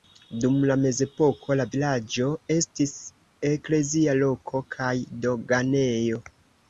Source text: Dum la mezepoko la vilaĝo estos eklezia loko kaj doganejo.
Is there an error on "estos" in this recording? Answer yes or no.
yes